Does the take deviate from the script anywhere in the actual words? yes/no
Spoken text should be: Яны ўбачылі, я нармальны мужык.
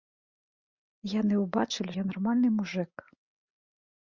no